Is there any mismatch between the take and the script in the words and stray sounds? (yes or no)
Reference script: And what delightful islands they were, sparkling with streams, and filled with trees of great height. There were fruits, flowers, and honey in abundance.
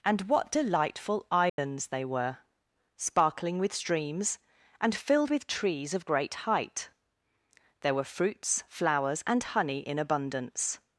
yes